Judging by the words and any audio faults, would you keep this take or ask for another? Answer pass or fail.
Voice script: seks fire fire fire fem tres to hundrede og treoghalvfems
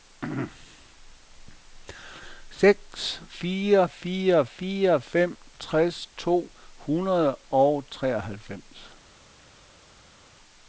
pass